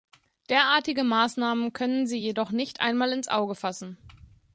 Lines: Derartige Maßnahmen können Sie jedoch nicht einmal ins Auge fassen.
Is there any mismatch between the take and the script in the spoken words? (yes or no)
no